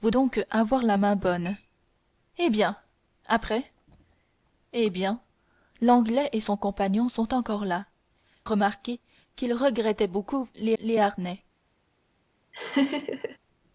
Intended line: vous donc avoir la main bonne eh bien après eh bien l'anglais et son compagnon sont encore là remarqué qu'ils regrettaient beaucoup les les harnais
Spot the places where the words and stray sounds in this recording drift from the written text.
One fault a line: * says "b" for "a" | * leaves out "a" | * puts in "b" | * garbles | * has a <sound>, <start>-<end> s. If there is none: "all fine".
* has a laugh, 12.5-13.4 s